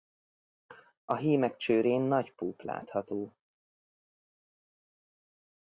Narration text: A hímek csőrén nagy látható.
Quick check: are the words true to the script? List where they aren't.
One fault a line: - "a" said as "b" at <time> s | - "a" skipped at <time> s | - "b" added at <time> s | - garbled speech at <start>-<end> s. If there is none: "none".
- "púp" added at 2.3 s